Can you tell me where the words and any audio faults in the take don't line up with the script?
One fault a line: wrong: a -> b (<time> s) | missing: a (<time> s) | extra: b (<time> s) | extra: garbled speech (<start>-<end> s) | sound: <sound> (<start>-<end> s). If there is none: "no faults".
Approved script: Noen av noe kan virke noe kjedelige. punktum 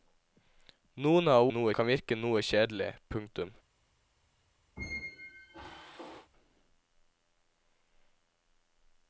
sound: squeak (4.8-6.3 s)